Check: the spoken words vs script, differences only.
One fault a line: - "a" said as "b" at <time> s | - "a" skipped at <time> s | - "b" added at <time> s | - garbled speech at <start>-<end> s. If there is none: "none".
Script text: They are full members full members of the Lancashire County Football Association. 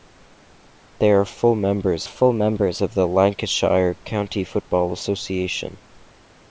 none